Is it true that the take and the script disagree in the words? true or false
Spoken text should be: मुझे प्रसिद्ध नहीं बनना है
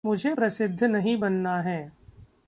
false